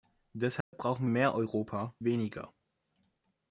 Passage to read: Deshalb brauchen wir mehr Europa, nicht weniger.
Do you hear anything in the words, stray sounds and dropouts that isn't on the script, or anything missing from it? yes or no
yes